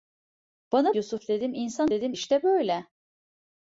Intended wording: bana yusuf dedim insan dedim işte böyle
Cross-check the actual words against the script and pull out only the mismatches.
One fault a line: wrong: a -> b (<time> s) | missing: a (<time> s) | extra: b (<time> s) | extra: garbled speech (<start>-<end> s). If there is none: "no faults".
no faults